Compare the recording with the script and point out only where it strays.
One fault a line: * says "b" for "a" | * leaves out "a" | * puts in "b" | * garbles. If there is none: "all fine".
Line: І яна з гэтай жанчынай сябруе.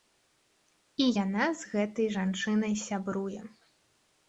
all fine